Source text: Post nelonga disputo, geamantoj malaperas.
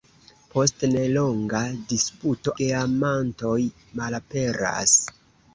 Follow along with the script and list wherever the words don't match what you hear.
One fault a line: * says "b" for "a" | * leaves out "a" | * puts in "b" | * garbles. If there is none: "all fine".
all fine